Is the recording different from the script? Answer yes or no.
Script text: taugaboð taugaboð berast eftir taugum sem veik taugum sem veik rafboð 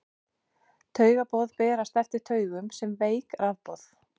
yes